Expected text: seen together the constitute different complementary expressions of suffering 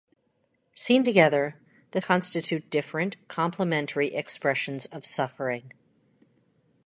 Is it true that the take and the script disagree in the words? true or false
false